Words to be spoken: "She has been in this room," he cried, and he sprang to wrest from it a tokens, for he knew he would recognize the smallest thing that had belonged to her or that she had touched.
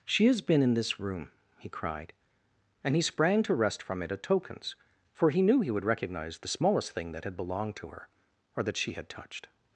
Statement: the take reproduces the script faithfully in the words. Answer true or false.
true